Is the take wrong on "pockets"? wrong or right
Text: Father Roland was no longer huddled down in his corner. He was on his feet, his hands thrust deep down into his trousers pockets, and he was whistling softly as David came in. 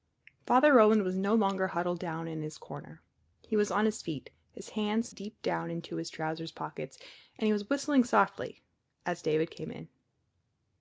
right